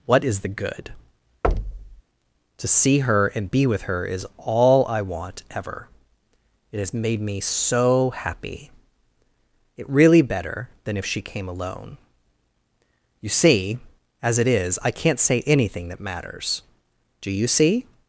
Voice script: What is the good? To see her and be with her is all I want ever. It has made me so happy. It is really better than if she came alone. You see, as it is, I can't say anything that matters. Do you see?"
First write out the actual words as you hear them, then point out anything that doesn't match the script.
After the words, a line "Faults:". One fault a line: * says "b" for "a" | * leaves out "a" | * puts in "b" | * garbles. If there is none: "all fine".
What is the good? To see her and be with her is all I want ever. It has made me so happy. It really better than if she came alone. You see, as it is, I can't say anything that matters. Do you see?"
Faults:
* leaves out "is"